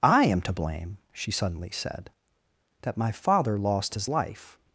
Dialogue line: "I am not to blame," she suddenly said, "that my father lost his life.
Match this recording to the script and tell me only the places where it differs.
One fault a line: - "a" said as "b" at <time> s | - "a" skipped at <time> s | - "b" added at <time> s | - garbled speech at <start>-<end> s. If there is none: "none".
- "not" skipped at 0.4 s